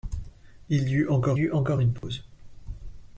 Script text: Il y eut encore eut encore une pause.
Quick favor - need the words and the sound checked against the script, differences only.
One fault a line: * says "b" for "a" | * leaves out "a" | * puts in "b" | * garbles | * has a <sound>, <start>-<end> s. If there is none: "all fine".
* has a dropout, 2.0-2.0 s